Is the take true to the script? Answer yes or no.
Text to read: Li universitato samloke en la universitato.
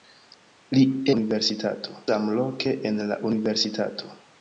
yes